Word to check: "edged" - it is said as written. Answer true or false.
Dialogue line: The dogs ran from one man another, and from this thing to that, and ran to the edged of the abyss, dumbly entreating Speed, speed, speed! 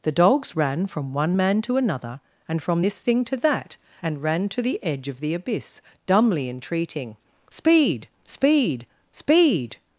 false